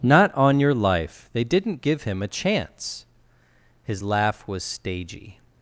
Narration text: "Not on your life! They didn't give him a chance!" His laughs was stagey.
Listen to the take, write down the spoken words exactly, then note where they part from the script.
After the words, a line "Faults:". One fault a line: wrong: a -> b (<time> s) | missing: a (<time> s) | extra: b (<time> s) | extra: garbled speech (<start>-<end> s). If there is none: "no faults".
"Not on your life! They didn't give him a chance!" His laugh was stagey.
Faults:
wrong: laughs -> laugh (4.0 s)